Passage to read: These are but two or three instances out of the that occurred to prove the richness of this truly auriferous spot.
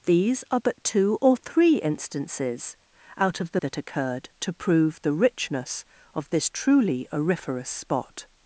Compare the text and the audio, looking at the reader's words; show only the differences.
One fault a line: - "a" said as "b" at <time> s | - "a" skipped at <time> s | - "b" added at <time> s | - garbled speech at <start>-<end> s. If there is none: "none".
none